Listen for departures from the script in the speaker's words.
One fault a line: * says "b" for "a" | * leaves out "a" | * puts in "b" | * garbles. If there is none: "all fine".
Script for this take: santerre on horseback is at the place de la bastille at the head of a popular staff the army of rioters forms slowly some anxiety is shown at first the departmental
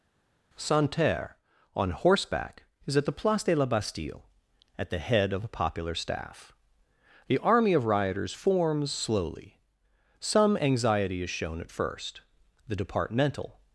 all fine